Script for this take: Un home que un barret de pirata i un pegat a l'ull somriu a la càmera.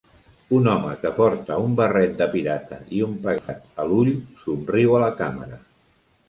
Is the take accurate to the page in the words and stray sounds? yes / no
no